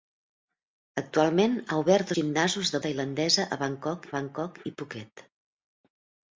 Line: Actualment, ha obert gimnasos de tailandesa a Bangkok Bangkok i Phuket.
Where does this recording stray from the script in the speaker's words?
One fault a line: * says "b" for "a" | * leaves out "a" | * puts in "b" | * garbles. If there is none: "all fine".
all fine